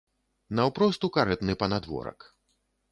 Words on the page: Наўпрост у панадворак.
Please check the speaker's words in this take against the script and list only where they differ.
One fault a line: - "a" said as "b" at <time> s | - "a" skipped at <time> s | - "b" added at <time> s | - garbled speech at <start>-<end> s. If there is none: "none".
- "карэтны" added at 1.2 s